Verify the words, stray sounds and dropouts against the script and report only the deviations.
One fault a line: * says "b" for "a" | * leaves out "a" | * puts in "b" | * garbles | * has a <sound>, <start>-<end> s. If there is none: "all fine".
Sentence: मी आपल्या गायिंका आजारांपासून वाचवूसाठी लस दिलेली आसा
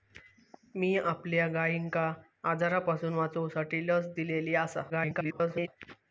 * garbles